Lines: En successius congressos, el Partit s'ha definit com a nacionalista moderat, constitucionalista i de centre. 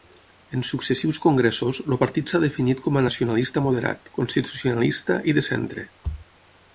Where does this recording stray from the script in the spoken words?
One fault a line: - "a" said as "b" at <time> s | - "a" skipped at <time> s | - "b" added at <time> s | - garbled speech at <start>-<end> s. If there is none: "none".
none